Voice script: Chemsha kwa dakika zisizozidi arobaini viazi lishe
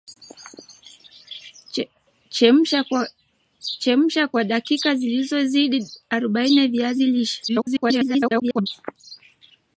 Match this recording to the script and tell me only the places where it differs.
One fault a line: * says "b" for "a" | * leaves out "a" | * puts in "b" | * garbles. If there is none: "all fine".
* garbles